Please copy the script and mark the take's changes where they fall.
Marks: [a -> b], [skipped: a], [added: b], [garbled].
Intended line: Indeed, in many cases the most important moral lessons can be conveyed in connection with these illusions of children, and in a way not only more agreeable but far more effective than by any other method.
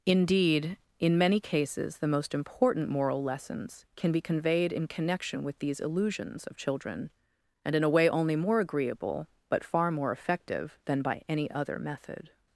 Indeed, in many cases the most important moral lessons can be conveyed in connection with these illusions of children, and in a way [skipped: not] only more agreeable but far more effective than by any other method.